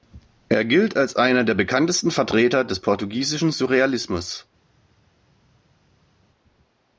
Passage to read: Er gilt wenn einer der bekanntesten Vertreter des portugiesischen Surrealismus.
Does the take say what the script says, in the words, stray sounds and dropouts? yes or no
no